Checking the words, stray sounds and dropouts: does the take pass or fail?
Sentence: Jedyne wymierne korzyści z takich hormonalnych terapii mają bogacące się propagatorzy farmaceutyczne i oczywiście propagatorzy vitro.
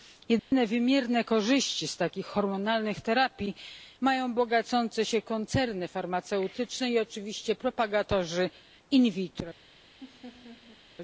fail